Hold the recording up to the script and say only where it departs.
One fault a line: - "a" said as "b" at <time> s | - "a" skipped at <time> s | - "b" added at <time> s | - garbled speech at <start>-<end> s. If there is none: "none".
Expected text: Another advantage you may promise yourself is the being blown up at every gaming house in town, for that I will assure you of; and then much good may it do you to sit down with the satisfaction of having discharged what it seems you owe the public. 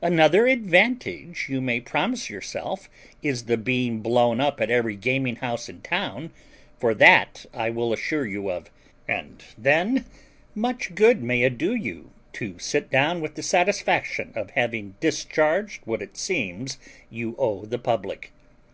none